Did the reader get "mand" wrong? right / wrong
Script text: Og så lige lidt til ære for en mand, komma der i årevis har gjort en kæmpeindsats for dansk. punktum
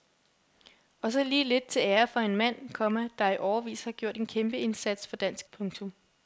right